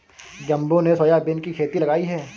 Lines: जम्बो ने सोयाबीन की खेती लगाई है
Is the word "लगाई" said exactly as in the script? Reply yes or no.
yes